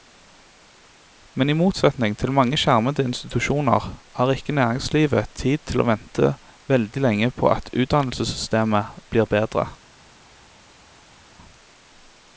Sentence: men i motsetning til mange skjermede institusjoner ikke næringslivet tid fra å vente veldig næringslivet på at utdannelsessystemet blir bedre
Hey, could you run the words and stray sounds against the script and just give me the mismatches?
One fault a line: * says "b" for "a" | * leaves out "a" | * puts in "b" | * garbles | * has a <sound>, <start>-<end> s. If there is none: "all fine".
* puts in "har"
* says "til" for "fra"
* says "lenge" for "næringslivet"